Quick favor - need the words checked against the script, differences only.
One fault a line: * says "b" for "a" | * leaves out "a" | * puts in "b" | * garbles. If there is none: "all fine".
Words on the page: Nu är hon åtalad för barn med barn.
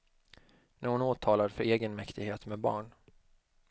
* says "egenmäktighet" for "barn"